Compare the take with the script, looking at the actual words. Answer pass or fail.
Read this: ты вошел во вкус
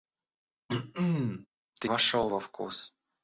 pass